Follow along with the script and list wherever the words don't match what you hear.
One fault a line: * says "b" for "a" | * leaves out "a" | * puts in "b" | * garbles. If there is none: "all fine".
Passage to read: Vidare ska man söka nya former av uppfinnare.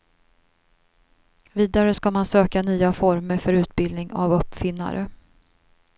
* puts in "för utbildning"